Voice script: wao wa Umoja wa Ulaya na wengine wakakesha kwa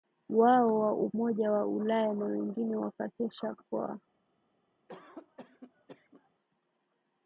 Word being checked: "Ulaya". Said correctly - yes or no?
yes